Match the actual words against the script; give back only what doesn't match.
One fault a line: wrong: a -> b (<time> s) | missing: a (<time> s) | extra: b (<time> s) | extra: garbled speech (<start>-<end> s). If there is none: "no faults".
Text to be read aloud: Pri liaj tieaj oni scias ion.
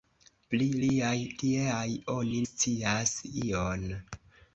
no faults